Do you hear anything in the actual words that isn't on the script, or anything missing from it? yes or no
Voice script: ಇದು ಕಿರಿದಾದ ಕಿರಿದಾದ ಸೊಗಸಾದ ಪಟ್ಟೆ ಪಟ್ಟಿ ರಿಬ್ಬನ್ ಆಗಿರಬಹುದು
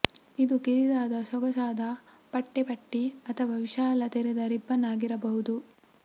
yes